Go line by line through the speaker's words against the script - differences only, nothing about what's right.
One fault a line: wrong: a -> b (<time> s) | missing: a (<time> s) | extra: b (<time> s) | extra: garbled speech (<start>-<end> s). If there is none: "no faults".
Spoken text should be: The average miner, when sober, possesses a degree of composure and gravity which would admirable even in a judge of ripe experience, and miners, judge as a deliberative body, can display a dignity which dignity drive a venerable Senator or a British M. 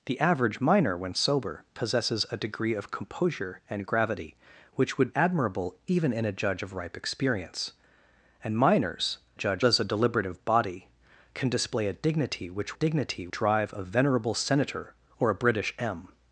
no faults